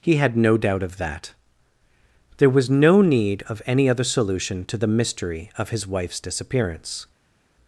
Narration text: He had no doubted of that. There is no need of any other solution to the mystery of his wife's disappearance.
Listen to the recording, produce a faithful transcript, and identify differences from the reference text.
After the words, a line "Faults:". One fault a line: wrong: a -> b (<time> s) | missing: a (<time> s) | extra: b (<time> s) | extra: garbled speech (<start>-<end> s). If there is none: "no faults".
He had no doubt of that. There was no need of any other solution to the mystery of his wife's disappearance.
Faults:
wrong: doubted -> doubt (0.6 s)
wrong: is -> was (2.5 s)